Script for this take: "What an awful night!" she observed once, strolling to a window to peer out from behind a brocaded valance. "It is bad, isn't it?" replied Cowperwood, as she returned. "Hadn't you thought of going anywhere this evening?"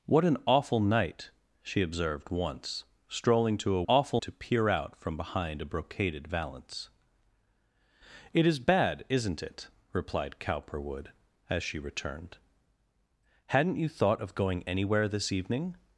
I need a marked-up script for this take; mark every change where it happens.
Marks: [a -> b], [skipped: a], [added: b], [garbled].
"What an awful night!" she observed once, strolling to a [window -> awful] to peer out from behind a brocaded valance. "It is bad, isn't it?" replied Cowperwood, as she returned. "Hadn't you thought of going anywhere this evening?"